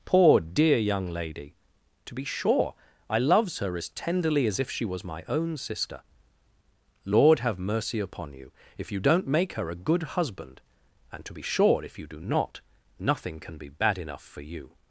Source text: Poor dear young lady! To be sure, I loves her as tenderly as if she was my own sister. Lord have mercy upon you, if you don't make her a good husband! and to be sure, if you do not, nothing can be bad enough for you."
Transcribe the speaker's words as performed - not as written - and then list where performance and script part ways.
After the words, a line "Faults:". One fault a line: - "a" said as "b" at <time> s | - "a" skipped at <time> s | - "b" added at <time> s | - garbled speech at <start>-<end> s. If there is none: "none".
Poor dear young lady! To be sure, I loves her as tenderly as if she was my own sister. Lord have mercy upon you, if you don't make her a good husband! and to be sure, if you do not, nothing can be bad enough for you."
Faults:
none